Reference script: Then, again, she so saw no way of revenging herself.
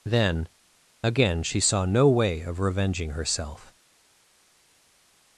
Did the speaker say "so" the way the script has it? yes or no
no